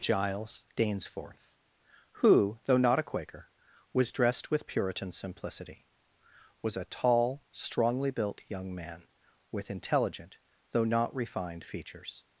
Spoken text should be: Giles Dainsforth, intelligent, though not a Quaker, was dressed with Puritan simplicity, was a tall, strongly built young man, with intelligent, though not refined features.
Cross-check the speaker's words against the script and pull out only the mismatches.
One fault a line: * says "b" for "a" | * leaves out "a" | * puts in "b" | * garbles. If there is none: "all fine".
* says "who" for "intelligent"